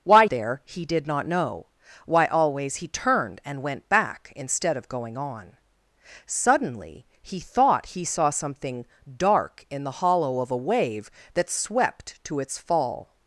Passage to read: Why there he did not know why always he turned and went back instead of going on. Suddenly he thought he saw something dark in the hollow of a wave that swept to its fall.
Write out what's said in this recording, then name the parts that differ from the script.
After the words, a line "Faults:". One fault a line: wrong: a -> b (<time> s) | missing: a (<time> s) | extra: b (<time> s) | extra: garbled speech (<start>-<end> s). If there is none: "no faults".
Why there he did not know why always he turned and went back instead of going on. Suddenly he thought he saw something dark in the hollow of a wave that swept to its fall.
Faults:
no faults